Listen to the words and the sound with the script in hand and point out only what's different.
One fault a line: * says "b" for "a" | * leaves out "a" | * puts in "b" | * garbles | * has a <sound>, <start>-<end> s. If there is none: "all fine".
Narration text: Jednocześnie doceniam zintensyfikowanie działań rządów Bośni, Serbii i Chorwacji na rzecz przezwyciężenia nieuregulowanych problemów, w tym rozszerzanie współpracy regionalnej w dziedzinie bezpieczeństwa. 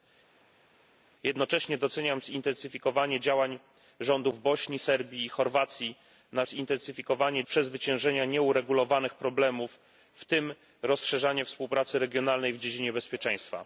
* says "zintensyfikowanie" for "rzecz"